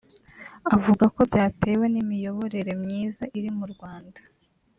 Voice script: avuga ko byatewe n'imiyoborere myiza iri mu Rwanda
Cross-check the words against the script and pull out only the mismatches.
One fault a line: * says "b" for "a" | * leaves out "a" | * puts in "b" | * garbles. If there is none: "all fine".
all fine